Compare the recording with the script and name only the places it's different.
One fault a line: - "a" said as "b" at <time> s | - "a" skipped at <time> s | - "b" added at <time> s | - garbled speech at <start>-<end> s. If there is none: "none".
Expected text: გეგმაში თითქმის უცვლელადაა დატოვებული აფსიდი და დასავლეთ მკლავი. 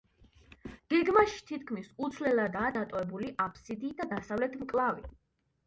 none